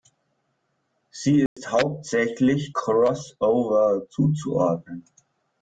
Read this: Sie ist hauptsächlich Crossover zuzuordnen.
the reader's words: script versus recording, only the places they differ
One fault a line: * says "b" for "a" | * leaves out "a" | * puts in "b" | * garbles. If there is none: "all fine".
all fine